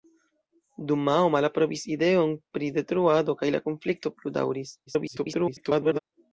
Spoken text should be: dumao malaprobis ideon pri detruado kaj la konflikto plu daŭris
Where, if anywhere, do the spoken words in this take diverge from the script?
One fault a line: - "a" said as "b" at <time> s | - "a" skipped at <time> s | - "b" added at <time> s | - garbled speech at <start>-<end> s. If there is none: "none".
- garbled speech at 4.9-6.0 s